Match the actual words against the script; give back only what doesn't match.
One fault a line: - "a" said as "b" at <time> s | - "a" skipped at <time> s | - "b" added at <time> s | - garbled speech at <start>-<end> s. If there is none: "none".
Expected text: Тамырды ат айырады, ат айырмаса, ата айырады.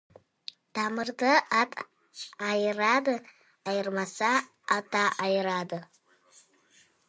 - "ат" skipped at 3.1 s